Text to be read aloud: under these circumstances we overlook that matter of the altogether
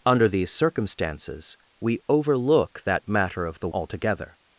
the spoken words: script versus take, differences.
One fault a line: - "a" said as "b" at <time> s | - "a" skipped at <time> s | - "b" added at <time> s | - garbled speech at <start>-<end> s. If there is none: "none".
none